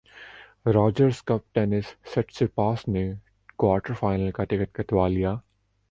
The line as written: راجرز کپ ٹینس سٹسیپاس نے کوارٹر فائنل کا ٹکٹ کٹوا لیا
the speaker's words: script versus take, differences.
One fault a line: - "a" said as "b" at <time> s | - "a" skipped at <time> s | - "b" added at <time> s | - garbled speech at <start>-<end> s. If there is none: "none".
none